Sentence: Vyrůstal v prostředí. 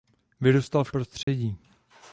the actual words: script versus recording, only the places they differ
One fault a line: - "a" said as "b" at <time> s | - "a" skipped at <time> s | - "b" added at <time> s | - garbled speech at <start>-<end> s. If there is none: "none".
none